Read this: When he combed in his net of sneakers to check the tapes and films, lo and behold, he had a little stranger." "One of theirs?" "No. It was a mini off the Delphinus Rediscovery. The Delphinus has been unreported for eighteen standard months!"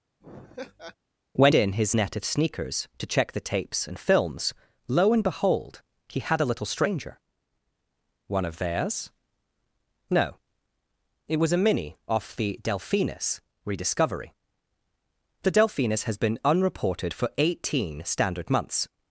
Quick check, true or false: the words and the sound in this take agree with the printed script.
false